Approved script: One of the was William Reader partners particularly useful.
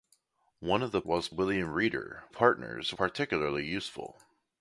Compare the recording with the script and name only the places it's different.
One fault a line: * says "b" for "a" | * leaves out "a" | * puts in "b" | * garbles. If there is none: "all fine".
all fine